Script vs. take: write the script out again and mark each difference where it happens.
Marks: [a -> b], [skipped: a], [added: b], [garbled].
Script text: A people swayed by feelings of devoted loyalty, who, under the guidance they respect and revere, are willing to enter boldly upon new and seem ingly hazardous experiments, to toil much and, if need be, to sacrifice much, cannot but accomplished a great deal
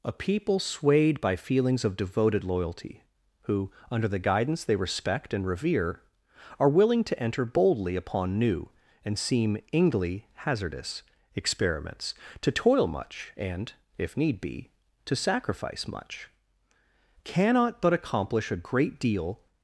A people swayed by feelings of devoted loyalty, who, under the guidance they respect and revere, are willing to enter boldly upon new and seem ingly hazardous experiments, to toil much and, if need be, to sacrifice much, cannot but [accomplished -> accomplish] a great deal